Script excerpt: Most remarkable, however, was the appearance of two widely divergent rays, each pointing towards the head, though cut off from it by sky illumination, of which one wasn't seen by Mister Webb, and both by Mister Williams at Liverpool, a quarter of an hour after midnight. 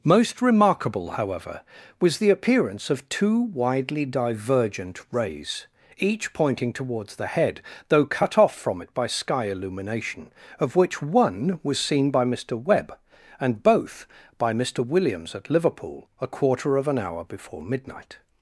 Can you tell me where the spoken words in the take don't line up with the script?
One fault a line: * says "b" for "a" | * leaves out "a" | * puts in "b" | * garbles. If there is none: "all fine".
* says "was" for "wasn't"
* says "before" for "after"